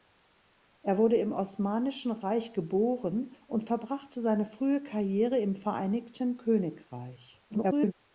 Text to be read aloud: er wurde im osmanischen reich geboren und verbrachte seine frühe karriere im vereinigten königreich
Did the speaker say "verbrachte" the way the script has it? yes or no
yes